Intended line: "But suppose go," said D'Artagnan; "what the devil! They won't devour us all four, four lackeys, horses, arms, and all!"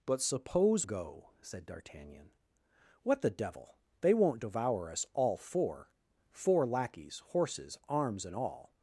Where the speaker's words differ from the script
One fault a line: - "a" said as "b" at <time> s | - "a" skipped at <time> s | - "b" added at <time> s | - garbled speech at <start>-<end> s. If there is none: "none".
none